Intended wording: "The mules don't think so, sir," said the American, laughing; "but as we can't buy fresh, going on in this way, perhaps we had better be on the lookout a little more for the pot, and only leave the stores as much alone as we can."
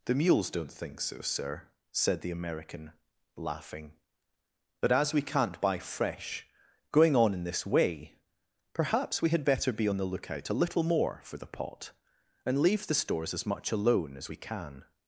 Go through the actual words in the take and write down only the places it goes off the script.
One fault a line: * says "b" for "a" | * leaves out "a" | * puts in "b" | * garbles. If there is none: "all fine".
* leaves out "only"